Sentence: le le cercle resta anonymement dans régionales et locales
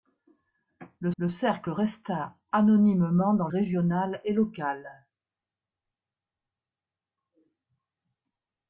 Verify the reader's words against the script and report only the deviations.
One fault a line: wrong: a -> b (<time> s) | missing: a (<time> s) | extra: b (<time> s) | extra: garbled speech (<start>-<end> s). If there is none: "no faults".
no faults